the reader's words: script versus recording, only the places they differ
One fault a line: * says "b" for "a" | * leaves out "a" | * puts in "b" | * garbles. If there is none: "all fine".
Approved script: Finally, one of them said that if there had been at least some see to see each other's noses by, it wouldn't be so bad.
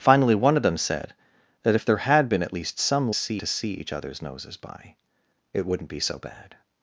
all fine